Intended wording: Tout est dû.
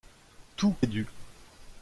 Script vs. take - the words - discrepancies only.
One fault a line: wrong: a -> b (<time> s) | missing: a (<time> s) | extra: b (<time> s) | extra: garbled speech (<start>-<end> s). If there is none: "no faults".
no faults